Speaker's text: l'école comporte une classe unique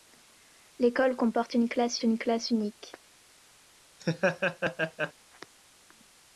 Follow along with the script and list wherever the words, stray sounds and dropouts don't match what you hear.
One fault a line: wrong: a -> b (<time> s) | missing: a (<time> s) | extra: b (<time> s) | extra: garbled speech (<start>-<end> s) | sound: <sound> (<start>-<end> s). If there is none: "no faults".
extra: une classe (2.0 s)
sound: laugh (4.0-5.1 s)